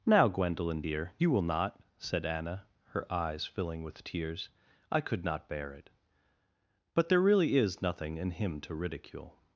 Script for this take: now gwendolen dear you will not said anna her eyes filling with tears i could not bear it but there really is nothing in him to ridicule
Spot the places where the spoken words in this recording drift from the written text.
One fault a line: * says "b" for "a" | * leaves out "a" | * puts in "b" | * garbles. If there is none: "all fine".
all fine